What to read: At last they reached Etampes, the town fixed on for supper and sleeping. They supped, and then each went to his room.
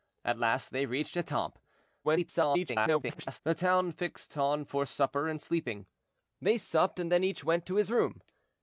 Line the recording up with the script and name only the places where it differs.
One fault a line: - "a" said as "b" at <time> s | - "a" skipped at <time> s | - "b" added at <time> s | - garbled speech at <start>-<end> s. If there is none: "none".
- garbled speech at 2.0-3.4 s